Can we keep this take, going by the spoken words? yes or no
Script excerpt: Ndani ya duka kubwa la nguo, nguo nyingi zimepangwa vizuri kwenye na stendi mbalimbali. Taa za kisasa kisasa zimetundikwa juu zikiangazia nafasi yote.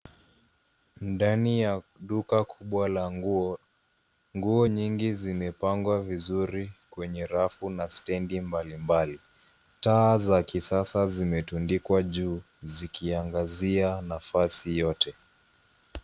no